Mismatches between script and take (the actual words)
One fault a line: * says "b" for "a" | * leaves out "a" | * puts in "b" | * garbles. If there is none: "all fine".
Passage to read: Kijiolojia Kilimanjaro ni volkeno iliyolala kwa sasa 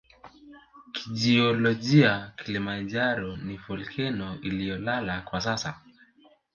all fine